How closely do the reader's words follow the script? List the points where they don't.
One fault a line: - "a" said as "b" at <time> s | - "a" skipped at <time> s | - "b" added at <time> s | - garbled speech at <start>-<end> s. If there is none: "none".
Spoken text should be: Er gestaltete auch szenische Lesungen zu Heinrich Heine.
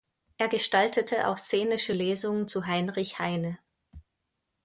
none